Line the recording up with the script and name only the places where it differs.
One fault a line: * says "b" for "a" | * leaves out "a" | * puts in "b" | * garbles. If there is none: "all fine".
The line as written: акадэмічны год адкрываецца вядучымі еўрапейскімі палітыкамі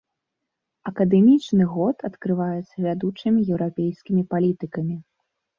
all fine